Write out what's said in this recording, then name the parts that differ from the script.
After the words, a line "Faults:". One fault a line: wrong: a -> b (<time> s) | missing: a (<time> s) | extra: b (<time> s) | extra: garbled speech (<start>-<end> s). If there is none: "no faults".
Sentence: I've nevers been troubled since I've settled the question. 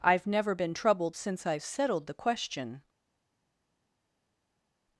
I've never been troubled since I've settled the question.
Faults:
wrong: nevers -> never (0.2 s)